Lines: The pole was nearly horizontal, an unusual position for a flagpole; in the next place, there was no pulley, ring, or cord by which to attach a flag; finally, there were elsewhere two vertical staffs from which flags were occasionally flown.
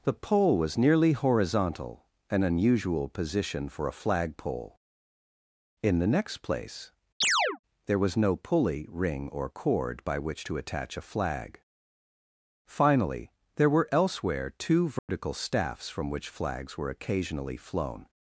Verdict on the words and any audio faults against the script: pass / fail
fail